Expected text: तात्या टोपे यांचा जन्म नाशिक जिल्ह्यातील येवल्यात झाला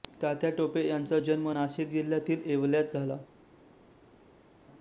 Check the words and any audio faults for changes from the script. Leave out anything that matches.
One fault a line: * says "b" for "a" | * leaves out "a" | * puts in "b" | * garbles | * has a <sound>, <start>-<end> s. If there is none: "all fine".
all fine